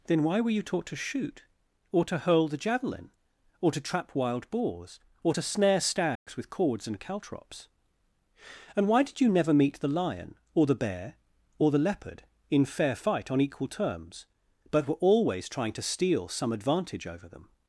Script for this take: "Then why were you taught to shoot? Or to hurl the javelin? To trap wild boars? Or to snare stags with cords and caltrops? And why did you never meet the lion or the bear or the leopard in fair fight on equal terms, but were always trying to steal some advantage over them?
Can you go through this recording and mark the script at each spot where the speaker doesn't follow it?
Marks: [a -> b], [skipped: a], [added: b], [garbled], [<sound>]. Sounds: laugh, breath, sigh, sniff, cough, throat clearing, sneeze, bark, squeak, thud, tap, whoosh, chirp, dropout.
"Then why were you taught to shoot? Or to hurl the javelin? [added: Or] To trap wild boars? Or to snare stags [dropout] with cords and caltrops? And why did you never meet the lion or the bear or the leopard in fair fight on equal terms, but were always trying to steal some advantage over them?